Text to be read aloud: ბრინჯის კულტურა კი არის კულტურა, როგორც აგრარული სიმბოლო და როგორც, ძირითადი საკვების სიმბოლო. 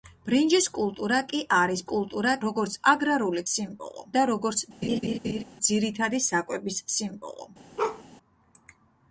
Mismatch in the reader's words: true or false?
false